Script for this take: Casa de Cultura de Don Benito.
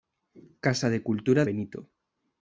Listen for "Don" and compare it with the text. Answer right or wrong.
wrong